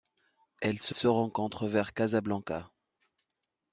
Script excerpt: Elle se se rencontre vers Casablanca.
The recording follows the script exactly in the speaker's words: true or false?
true